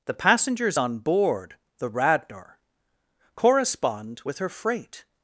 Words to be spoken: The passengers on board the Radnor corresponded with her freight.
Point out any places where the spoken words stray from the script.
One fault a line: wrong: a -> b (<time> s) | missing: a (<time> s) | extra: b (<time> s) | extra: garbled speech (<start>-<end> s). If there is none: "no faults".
wrong: corresponded -> correspond (3.3 s)